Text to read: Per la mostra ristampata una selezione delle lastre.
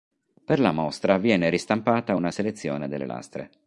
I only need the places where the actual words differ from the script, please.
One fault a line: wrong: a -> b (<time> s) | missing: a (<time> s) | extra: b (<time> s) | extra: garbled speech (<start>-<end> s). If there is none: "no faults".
extra: viene (1.2 s)